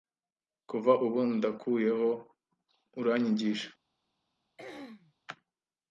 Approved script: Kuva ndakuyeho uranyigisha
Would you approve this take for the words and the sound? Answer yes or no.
no